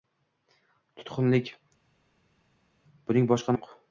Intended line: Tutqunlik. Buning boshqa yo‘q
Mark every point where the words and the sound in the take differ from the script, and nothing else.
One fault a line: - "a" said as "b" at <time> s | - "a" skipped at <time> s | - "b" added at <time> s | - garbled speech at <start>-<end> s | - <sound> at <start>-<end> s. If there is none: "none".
none